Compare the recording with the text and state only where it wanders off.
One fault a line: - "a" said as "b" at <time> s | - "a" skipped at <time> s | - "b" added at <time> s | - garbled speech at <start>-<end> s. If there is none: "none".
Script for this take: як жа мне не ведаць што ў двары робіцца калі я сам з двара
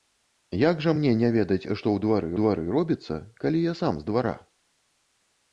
- "двары" added at 2.4 s